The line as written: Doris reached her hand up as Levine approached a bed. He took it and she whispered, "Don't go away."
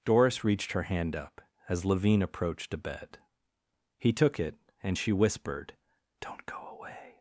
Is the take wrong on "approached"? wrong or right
right